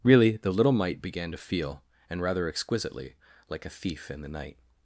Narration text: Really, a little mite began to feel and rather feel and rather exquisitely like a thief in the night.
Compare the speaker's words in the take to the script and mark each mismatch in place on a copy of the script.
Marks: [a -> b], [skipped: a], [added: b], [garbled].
Really, [a -> the] little mite began to feel and rather [skipped: feel and rather] exquisitely like a thief in the night.